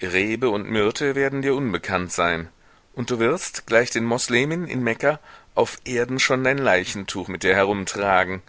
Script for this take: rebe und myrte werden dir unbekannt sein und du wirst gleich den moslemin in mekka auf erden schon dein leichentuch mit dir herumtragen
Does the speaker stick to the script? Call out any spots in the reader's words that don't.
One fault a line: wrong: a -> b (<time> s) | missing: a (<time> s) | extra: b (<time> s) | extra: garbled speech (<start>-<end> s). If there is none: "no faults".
no faults